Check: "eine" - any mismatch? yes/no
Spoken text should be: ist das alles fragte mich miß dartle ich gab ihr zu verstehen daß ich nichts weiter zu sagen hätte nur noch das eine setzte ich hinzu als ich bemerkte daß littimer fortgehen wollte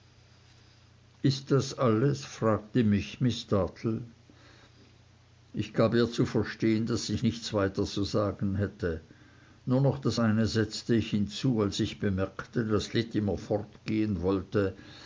no